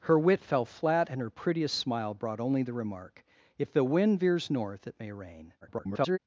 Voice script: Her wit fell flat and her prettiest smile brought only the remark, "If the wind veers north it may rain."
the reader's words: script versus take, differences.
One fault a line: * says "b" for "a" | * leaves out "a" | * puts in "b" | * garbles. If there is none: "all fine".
* garbles